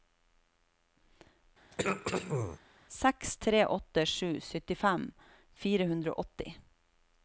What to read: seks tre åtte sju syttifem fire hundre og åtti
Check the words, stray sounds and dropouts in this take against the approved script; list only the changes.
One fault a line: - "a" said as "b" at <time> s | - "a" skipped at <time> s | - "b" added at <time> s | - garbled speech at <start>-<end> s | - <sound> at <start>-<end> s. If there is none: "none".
- throat clearing at 1.7-2.6 s